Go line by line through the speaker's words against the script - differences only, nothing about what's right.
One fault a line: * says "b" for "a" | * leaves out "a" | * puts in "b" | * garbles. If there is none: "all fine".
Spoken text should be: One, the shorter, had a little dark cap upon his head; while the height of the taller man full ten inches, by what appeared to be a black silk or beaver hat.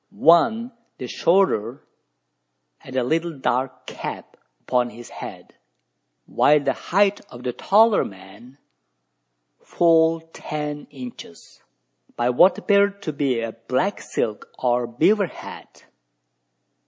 all fine